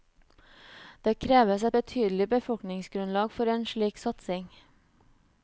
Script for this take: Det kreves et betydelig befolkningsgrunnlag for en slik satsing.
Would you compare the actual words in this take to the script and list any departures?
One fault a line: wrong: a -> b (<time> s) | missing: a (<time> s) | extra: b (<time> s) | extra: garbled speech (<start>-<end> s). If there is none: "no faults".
no faults